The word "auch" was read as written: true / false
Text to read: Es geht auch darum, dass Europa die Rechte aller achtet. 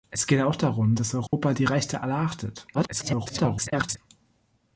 true